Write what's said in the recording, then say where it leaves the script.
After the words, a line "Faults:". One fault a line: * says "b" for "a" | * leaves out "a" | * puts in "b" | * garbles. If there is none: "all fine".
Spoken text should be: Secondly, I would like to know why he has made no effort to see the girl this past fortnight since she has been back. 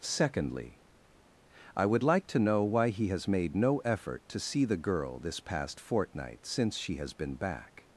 Secondly, I would like to know why he has made no effort to see the girl this past fortnight since she has been back.
Faults:
all fine